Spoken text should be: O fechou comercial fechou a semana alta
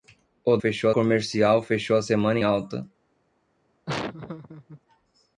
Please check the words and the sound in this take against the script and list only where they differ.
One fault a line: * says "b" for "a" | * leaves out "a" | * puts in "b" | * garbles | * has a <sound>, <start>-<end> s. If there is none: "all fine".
* has a laugh, 3.9-4.8 s